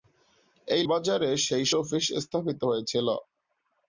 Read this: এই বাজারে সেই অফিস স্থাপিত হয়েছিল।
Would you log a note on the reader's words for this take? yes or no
no